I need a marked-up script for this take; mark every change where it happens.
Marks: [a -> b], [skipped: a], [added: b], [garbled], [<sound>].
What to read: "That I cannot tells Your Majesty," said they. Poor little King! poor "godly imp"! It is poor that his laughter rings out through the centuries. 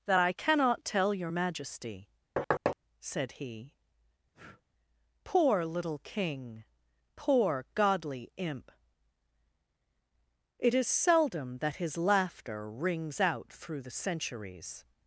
"That I cannot [tells -> tell] Your Majesty," [thud] said [they. -> he] [breath] Poor little King! poor "godly imp"! It is [poor -> seldom] that his laughter rings out through the centuries.